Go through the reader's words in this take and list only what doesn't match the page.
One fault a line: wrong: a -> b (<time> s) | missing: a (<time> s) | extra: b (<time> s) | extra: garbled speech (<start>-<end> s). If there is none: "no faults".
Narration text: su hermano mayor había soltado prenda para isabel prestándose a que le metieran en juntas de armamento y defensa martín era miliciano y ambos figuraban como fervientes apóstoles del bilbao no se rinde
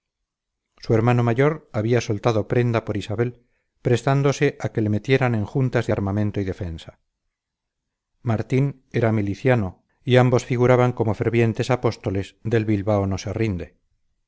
wrong: para -> por (2.9 s)